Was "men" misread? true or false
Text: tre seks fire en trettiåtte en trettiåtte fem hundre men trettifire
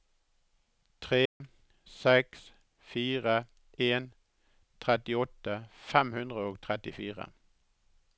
true